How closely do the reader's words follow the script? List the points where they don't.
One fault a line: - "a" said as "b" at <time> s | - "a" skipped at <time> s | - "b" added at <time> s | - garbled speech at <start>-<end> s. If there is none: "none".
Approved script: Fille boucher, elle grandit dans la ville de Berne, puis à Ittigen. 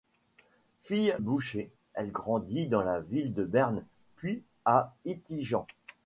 none